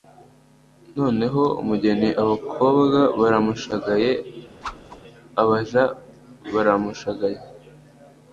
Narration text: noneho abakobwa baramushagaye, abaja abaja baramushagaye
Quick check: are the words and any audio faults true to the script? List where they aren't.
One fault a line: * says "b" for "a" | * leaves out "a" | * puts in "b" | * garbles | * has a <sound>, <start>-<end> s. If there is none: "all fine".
* puts in "umugeni"
* has a whoosh, 4.6-5.0 s
* leaves out "abaja"